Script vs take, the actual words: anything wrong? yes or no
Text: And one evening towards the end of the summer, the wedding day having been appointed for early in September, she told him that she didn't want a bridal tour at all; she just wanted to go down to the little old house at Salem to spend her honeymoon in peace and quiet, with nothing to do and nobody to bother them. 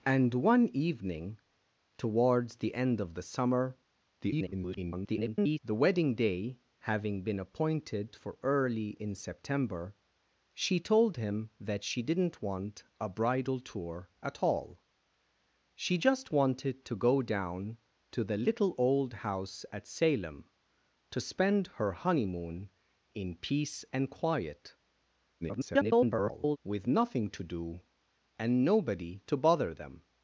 yes